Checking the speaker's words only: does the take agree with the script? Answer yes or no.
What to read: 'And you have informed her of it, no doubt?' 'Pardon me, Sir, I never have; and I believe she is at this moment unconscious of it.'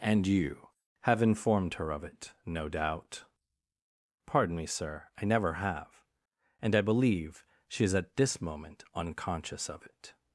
yes